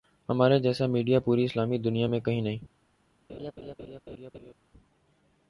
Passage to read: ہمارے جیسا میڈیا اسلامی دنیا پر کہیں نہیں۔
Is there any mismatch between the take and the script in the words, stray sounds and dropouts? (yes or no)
yes